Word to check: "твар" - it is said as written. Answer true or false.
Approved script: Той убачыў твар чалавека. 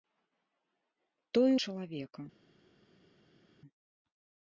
false